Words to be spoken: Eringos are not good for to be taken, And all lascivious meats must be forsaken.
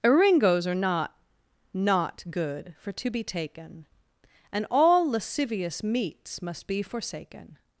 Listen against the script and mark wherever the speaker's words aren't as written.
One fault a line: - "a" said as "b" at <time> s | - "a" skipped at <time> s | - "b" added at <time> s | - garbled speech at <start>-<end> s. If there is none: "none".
- "not" added at 1.7 s